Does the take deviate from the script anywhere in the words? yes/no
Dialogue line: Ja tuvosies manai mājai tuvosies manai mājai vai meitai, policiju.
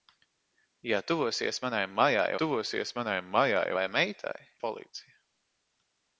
no